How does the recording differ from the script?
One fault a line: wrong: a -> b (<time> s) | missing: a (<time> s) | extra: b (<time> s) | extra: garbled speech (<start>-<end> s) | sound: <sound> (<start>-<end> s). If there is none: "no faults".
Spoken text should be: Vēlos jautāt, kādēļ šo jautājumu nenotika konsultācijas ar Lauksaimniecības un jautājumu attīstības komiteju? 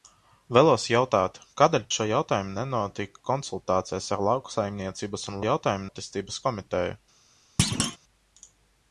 sound: thud (7.6-8.0 s)